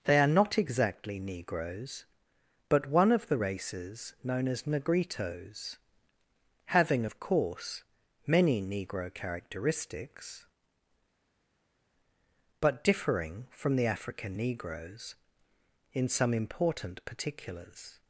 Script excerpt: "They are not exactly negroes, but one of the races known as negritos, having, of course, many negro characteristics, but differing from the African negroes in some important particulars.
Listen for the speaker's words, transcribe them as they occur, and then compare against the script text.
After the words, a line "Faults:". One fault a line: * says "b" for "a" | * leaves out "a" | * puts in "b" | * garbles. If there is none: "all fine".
"They are not exactly negroes, but one of the races known as negritos, having, of course, many negro characteristics, but differing from the African negroes in some important particulars.
Faults:
all fine